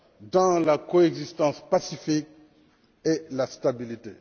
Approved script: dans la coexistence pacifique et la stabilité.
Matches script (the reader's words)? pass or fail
pass